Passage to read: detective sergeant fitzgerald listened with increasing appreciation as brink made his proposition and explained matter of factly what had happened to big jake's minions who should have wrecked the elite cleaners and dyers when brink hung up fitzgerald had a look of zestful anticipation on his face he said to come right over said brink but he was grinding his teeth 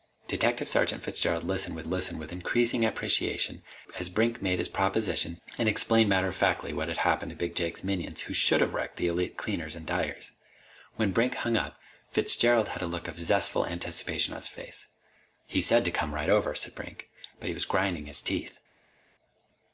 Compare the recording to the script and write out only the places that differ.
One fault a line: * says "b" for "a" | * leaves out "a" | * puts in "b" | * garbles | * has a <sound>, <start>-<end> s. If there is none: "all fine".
* puts in "listened with"